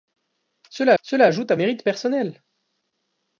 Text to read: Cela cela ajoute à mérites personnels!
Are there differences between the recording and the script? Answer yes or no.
no